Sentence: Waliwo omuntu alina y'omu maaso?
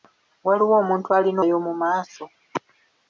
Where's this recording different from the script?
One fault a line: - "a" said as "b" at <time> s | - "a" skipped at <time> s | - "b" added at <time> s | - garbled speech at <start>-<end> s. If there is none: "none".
none